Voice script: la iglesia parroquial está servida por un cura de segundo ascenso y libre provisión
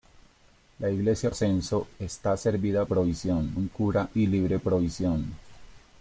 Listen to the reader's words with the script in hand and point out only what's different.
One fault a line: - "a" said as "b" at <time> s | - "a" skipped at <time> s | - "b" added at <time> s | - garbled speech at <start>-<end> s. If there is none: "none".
- "parroquial" said as "ascenso" at 1.3 s
- "por" said as "provisión" at 2.8 s
- "de segundo ascenso" skipped at 4.1 s